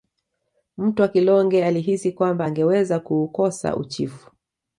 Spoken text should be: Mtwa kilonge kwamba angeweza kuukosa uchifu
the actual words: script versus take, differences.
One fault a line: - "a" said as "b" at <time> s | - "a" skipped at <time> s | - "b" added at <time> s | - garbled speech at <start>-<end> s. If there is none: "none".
- "alihisi" added at 1.6 s